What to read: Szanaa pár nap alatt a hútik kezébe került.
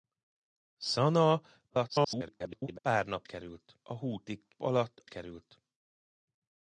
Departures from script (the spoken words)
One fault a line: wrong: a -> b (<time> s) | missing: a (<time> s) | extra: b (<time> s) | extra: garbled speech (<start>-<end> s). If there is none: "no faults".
extra: garbled speech (1.7-2.8 s)
wrong: alatt -> került (3.2 s)
wrong: kezébe -> alatt (4.6 s)